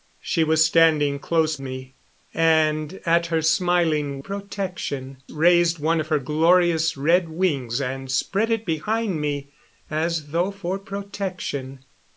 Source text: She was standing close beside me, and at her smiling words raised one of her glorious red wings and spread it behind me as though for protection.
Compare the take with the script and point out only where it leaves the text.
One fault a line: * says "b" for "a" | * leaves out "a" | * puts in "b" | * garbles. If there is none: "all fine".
* leaves out "beside"
* says "protection" for "words"